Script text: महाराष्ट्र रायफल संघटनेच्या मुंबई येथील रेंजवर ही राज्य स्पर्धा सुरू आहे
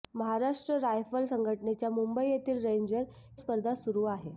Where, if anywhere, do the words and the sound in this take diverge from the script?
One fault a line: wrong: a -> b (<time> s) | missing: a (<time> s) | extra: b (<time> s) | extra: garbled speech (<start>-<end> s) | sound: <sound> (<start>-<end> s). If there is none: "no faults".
missing: ही राज्य (3.0 s)